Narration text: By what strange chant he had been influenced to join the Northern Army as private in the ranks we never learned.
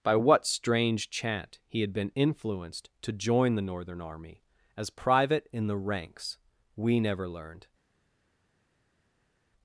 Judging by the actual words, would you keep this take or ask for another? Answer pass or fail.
pass